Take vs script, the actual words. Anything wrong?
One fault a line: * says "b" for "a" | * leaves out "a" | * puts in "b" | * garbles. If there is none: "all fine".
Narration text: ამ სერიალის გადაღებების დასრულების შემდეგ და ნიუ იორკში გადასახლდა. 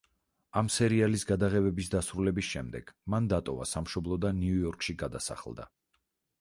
* puts in "მან დატოვა სამშობლო"